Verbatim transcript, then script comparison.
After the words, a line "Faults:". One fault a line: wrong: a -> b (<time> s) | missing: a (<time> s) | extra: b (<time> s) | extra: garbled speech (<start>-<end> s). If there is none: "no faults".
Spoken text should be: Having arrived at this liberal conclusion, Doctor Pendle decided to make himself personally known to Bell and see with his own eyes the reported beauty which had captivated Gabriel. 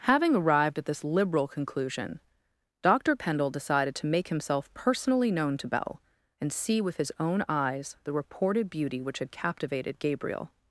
Having arrived at this liberal conclusion, Doctor Pendle decided to make himself personally known to Bell and see with his own eyes the reported beauty which had captivated Gabriel.
Faults:
no faults